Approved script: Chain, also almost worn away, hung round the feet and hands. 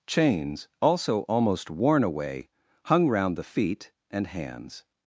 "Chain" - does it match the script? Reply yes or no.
no